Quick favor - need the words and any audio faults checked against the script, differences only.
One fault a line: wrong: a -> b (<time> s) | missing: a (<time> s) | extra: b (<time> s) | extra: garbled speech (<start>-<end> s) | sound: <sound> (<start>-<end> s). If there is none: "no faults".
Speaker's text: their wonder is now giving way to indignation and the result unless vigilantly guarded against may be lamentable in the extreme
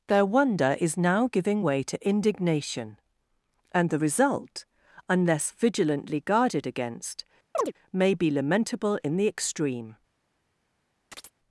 sound: chirp (7.5-7.7 s)
sound: chirp (11.1-11.3 s)